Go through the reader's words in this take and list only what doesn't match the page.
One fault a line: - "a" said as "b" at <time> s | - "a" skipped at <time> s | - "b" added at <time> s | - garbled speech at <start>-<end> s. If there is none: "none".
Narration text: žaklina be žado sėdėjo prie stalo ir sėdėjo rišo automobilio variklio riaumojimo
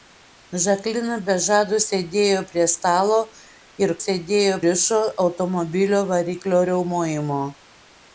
none